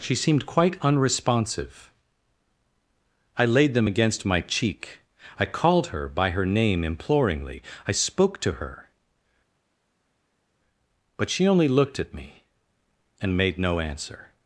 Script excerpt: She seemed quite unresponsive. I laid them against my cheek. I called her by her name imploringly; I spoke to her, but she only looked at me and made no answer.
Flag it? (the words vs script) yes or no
no